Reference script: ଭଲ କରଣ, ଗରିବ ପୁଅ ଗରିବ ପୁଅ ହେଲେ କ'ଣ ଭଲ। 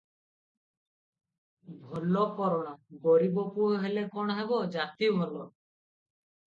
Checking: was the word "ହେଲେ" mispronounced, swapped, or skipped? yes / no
yes